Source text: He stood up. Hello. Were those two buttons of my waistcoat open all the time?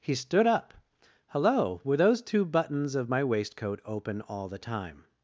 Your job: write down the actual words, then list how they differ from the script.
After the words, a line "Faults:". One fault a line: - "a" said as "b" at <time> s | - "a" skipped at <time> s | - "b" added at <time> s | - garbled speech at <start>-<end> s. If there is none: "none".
He stood up. Hello. Were those two buttons of my waistcoat open all the time?
Faults:
none